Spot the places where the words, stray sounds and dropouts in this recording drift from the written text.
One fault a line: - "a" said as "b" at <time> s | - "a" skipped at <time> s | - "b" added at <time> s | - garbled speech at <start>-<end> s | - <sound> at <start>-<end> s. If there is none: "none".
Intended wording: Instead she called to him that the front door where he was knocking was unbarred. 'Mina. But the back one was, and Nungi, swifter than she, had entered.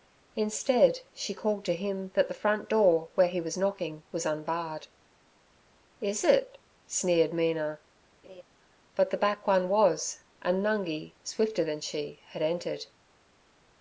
- "Is it sneered" added at 6.0 s
- laugh at 8.2-8.4 s